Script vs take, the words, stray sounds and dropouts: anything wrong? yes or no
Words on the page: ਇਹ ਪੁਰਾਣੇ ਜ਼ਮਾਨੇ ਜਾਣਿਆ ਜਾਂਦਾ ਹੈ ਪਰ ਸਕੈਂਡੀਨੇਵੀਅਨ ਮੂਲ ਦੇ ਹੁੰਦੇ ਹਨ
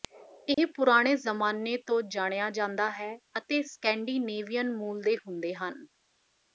yes